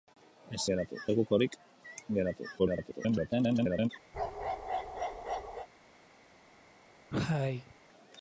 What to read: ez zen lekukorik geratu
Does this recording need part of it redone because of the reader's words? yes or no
yes